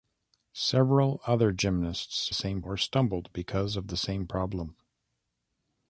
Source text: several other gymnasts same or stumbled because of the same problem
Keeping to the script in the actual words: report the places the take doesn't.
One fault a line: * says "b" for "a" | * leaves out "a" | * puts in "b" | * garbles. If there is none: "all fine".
all fine